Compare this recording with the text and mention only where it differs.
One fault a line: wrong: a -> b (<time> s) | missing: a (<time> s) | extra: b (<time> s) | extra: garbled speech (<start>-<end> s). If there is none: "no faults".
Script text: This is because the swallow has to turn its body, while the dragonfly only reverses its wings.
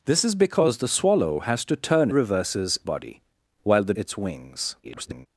wrong: its -> reverses (2.1 s)
missing: dragonfly only reverses (3.9 s)
extra: garbled speech (4.8-5.3 s)